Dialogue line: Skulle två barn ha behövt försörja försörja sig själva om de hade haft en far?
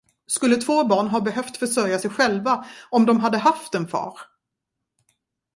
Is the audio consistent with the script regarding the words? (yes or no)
no